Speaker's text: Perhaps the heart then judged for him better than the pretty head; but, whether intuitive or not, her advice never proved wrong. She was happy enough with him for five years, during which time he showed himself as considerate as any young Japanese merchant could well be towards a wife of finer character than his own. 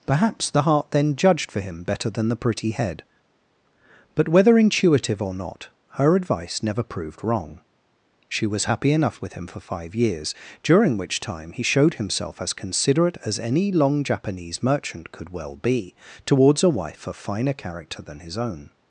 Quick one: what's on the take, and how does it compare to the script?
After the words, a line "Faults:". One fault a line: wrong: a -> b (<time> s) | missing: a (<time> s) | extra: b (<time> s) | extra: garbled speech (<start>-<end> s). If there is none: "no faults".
Perhaps the heart then judged for him better than the pretty head; but, whether intuitive or not, her advice never proved wrong. She was happy enough with him for five years, during which time he showed himself as considerate as any long Japanese merchant could well be towards a wife of finer character than his own.
Faults:
wrong: young -> long (13.7 s)